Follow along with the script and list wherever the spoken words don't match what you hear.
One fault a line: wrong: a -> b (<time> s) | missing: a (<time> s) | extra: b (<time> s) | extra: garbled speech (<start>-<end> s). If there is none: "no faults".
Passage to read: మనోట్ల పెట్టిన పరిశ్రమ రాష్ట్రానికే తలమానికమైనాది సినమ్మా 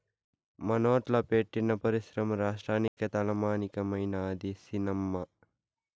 no faults